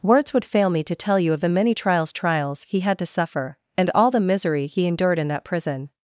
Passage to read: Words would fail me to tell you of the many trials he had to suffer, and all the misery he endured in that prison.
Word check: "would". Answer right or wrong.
right